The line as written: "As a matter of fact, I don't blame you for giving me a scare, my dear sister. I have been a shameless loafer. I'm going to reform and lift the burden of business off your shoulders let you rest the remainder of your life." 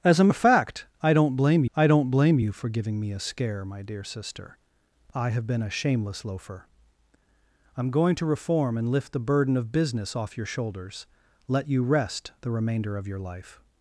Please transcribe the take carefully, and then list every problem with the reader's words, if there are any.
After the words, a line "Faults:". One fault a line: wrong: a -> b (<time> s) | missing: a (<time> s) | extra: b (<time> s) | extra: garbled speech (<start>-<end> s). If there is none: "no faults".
"As a of fact, I don't blame I don't blame you for giving me a scare, my dear sister. I have been a shameless loafer. I'm going to reform and lift the burden of business off your shoulders let you rest the remainder of your life."
Faults:
missing: matter (0.3 s)
extra: I don't blame (1.7 s)